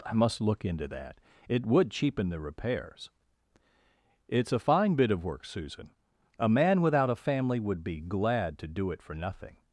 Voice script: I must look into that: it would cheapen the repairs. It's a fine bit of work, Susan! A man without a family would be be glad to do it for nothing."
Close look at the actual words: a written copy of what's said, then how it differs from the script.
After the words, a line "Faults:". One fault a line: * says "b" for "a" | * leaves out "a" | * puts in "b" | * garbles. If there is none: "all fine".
I must look into that: it would cheapen the repairs. It's a fine bit of work, Susan! A man without a family would be glad to do it for nothing."
Faults:
* leaves out "be"